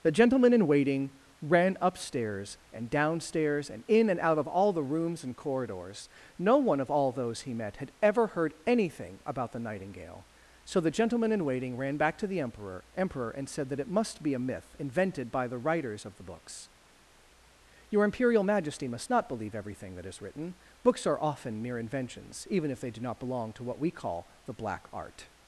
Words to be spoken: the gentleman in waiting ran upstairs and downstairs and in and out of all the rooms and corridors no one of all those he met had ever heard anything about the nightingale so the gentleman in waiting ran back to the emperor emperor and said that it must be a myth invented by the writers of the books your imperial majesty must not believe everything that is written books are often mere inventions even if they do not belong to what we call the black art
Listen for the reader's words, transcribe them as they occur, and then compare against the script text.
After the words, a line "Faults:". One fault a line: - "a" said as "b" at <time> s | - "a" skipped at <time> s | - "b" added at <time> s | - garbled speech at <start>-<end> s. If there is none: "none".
the gentleman in waiting ran upstairs and downstairs and in and out of all the rooms and corridors no one of all those he met had ever heard anything about the nightingale so the gentleman in waiting ran back to the emperor emperor and said that it must be a myth invented by the writers of the books your imperial majesty must not believe everything that is written books are often mere inventions even if they do not belong to what we call the black art
Faults:
none